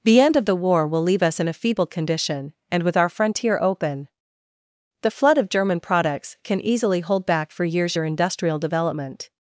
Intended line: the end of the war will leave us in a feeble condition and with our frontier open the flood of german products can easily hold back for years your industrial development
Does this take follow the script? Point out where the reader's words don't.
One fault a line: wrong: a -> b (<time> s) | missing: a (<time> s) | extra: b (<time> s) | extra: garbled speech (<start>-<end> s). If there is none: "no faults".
no faults